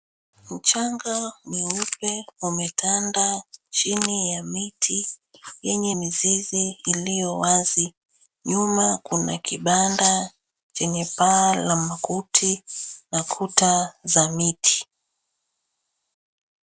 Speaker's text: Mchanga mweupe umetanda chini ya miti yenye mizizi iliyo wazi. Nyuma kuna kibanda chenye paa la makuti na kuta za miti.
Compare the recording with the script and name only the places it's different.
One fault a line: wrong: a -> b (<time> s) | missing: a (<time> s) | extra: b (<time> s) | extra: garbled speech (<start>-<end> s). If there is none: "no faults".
no faults